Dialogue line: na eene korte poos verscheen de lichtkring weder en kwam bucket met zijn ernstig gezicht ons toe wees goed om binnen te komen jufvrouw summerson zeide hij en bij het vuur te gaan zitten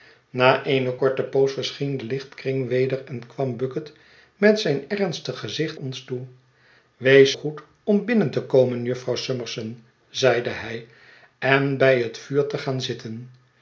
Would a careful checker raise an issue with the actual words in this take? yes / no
no